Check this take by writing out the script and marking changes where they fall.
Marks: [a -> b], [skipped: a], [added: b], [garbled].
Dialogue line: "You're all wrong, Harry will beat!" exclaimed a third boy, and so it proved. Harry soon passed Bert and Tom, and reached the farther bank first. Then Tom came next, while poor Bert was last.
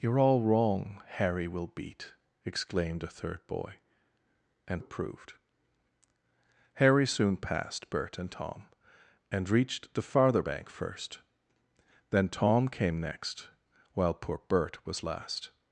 "You're all wrong, Harry will beat!" exclaimed a third boy, and [skipped: so] it proved. Harry soon passed Bert and Tom, and reached the farther bank first. Then Tom came next, while poor Bert was last.